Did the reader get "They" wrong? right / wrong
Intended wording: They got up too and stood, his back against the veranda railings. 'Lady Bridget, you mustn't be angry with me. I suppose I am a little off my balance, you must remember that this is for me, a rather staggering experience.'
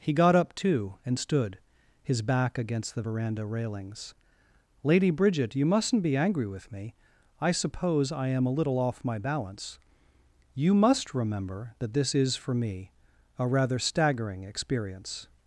wrong